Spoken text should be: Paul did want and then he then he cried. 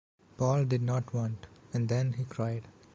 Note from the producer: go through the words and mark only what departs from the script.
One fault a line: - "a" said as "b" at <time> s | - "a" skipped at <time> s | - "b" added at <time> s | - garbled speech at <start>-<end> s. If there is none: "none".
- "not" added at 0.8 s
- "then he" skipped at 2.2 s